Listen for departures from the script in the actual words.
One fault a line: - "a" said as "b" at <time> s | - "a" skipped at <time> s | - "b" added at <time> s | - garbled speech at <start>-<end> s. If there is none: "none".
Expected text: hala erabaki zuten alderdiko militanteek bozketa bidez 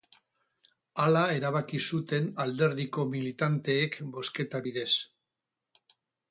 none